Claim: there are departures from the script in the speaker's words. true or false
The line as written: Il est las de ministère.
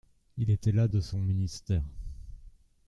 true